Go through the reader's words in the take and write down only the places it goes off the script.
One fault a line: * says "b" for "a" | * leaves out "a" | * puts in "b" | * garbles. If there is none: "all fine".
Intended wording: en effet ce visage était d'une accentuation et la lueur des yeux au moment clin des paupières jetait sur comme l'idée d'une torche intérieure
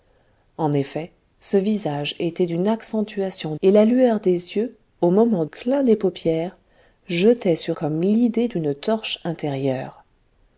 all fine